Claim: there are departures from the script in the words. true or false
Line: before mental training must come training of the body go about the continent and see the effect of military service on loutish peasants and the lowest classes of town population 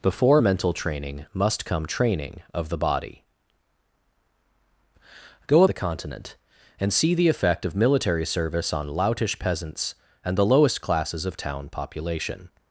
true